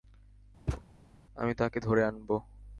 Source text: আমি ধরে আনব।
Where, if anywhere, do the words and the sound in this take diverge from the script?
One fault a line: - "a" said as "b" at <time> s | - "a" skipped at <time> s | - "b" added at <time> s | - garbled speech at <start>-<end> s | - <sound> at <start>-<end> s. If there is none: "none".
- thud at 0.7-0.9 s
- "তাকে" added at 1.5 s